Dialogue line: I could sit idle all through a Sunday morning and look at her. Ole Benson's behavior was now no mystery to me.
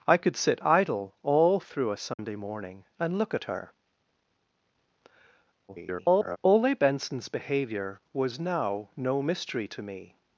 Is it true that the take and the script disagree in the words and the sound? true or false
true